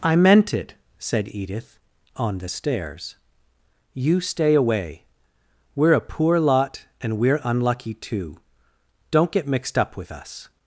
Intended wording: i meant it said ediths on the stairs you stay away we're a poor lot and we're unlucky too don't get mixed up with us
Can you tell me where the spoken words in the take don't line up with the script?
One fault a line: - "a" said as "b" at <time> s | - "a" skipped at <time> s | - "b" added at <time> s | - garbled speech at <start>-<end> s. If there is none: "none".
- "ediths" said as "edith" at 1.3 s